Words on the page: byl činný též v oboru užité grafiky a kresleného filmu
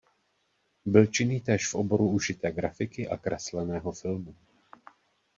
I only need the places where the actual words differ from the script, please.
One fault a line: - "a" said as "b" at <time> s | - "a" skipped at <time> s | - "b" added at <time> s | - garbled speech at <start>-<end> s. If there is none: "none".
none